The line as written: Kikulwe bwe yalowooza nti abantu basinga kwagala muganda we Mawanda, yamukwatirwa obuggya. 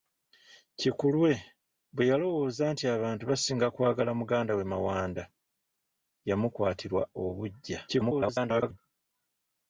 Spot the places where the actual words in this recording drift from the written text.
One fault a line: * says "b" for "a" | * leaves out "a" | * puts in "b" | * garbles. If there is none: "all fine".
* garbles